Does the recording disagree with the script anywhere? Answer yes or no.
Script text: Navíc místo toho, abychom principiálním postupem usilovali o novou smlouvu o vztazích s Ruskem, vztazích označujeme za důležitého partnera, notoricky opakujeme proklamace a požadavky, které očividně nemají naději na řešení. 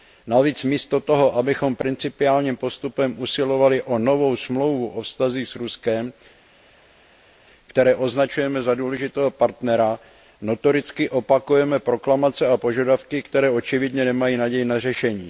yes